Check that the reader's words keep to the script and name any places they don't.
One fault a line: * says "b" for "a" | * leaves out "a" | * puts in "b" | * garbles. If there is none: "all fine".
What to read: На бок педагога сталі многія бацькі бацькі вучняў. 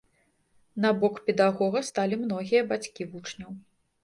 * leaves out "бацькі"